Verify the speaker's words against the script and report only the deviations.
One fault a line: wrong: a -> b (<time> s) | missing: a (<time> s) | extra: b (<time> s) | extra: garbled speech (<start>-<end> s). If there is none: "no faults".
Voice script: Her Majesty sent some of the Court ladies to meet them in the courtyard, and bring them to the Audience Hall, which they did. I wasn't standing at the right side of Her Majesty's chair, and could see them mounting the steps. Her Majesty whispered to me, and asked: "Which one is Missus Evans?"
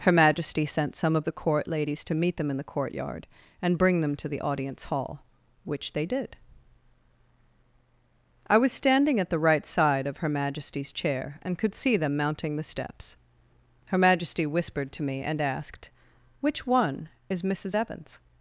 wrong: wasn't -> was (8.6 s)